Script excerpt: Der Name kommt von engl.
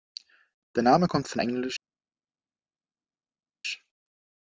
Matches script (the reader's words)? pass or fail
pass